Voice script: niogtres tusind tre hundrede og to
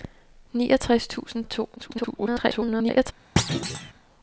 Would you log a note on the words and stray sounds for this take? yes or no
yes